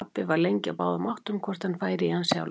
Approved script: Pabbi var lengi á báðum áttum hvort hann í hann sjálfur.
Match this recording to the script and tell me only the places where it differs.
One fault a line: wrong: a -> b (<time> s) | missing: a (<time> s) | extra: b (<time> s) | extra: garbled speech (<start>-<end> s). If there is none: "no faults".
extra: færi (1.8 s)